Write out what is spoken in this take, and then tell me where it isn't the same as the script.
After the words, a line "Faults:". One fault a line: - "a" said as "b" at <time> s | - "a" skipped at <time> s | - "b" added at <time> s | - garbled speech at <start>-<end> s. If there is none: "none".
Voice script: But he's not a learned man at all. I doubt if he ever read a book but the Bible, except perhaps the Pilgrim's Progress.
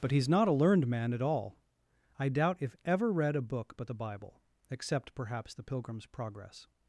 But he's not a learned man at all. I doubt if ever read a book but the Bible, except perhaps the Pilgrim's Progress.
Faults:
- "he" skipped at 2.8 s